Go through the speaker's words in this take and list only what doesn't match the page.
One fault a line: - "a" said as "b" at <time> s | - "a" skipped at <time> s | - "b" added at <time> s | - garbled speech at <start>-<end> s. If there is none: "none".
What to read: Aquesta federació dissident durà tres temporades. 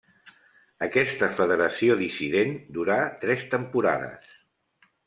none